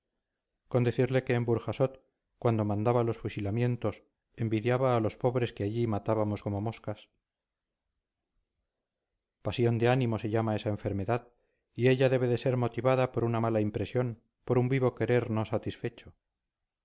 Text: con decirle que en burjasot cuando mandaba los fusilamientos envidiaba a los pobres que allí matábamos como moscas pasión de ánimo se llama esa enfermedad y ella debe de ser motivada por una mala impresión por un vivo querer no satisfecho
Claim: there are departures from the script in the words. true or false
false